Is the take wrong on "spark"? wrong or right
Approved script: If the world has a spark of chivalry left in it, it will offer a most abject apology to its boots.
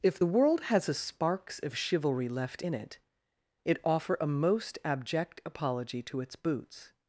wrong